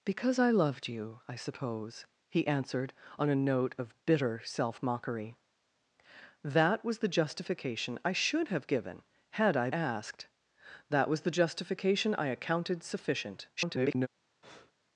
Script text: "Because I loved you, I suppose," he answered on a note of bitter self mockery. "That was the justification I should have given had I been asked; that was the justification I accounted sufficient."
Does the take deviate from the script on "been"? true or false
true